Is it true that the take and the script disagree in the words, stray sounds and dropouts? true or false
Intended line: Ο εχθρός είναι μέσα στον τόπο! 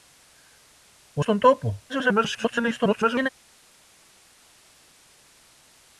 true